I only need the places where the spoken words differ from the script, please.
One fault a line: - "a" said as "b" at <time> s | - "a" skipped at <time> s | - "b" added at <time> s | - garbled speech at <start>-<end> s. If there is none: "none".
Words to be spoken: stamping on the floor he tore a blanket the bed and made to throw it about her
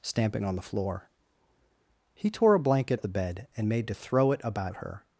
none